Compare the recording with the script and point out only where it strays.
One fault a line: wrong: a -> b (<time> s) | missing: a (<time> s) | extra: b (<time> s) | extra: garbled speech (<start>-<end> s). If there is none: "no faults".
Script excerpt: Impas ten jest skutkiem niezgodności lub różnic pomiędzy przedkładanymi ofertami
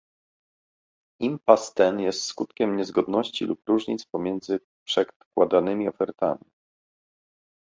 no faults